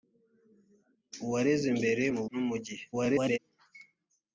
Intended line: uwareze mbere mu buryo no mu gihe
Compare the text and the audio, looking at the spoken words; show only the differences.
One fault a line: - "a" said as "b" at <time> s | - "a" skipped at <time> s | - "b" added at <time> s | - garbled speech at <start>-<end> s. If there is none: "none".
- "buryo" skipped at 2.2 s
- garbled speech at 2.9-3.4 s